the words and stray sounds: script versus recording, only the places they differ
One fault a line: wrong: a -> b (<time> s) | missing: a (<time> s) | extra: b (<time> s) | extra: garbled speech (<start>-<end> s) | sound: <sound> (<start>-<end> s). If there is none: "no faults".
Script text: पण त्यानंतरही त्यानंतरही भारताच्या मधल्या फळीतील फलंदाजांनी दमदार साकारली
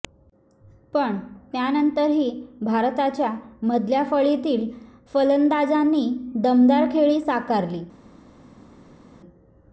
missing: त्यानंतरही (2.3 s)
extra: खेळी (6.9 s)